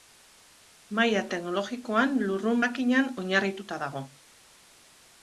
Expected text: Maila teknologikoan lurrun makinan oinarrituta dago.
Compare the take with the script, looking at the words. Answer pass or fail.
pass